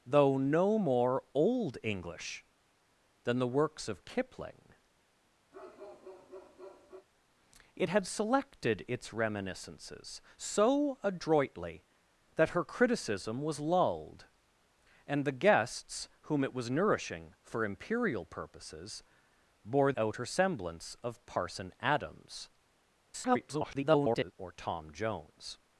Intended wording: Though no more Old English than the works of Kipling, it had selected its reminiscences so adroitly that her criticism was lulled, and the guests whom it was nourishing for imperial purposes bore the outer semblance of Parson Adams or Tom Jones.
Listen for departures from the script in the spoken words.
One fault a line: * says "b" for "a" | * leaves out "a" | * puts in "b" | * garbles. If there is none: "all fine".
* leaves out "the"
* garbles